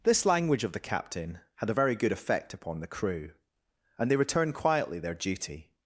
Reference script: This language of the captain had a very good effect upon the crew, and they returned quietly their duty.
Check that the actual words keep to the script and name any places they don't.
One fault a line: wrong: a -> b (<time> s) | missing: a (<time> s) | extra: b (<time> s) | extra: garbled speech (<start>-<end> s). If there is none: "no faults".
no faults